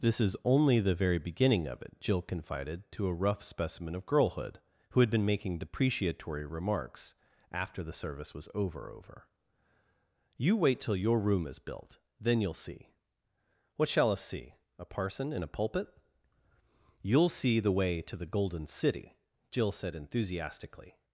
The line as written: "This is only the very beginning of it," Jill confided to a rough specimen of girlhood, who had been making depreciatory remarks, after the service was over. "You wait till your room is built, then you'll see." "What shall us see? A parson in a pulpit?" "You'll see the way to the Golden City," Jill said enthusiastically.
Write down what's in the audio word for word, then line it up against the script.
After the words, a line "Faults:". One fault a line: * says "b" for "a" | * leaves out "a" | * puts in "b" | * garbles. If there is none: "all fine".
"This is only the very beginning of it," Jill confided to a rough specimen of girlhood, who had been making depreciatory remarks, after the service was over over. "You wait till your room is built, then you'll see." "What shall us see? A parson in a pulpit?" "You'll see the way to the Golden City," Jill said enthusiastically.
Faults:
* puts in "over"